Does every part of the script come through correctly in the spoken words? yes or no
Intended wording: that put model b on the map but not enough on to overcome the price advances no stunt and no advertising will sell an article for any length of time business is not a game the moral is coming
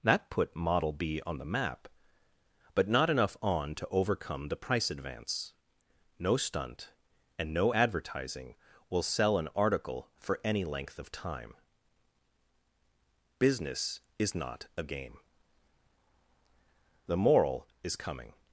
no